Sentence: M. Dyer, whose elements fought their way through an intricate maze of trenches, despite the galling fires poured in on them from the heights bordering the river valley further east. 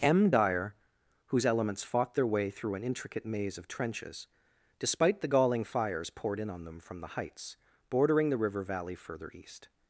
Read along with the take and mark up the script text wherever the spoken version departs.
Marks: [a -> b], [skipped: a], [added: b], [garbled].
M. Dyer, whose elements fought their way through an intricate maze of trenches, despite the galling fires poured in on them from the heights bordering the river valley further east.